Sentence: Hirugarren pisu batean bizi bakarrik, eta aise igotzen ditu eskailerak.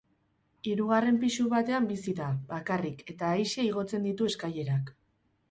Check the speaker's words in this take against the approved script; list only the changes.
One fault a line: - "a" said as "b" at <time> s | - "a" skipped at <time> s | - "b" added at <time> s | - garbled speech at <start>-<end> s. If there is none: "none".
- "da" added at 2.2 s